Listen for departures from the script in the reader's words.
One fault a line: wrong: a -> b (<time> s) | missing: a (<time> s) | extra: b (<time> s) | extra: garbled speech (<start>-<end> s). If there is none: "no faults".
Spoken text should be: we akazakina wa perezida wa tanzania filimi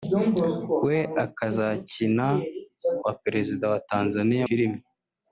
no faults